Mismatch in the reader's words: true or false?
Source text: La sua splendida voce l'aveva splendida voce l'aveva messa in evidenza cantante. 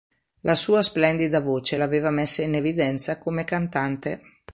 true